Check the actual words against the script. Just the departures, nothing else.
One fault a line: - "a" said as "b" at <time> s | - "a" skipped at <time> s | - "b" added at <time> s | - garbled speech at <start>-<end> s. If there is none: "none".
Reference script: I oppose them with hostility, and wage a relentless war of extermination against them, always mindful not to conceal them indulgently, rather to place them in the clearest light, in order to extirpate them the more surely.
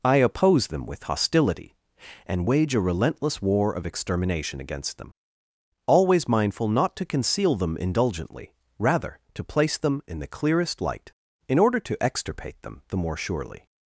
none